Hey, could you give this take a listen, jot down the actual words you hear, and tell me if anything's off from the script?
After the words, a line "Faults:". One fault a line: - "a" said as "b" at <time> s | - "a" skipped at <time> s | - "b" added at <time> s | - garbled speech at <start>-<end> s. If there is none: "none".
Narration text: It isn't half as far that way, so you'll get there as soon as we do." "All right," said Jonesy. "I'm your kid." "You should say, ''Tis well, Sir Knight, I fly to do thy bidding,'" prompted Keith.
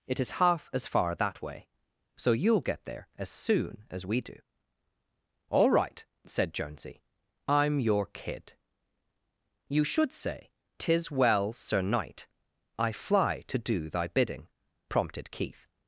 It is half as far that way, so you'll get there as soon as we do." "All right," said Jonesy. "I'm your kid." "You should say, ''Tis well, Sir Knight, I fly to do thy bidding,'" prompted Keith.
Faults:
- "isn't" said as "is" at 0.2 s